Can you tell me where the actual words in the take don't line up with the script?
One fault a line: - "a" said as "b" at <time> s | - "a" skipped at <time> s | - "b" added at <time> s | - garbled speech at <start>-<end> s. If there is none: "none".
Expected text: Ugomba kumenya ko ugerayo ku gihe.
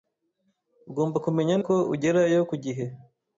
none